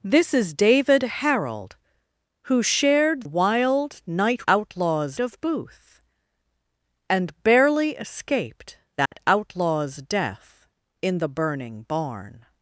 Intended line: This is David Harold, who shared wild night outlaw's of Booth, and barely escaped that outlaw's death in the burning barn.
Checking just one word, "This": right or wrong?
right